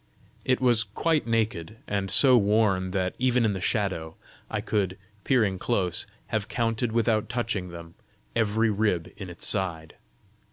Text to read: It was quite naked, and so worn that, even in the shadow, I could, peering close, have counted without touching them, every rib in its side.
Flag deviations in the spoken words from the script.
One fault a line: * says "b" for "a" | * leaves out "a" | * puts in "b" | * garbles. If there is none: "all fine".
all fine